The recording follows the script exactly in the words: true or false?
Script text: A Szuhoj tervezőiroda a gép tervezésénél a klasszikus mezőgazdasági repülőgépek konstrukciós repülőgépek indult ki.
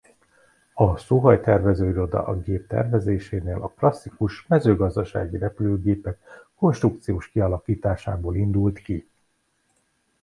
false